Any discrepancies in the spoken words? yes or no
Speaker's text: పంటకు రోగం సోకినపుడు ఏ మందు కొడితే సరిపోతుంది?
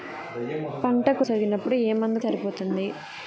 yes